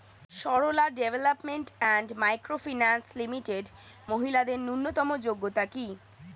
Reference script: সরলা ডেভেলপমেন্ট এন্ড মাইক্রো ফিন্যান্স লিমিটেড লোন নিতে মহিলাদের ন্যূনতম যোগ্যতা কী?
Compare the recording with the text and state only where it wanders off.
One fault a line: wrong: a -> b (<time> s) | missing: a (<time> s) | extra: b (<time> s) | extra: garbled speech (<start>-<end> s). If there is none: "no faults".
missing: লোন নিতে (3.7 s)